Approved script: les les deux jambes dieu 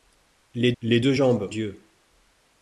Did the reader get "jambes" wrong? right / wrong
right